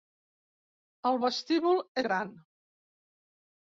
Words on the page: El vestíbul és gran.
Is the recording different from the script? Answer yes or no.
yes